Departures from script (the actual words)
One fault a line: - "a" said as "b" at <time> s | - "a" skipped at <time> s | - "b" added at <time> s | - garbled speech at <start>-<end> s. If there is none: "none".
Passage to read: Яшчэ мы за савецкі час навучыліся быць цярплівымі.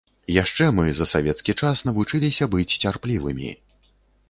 none